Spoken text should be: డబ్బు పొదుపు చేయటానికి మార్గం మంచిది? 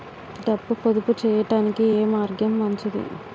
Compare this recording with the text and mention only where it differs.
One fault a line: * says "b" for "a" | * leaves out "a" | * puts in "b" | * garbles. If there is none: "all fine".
* puts in "ఏ"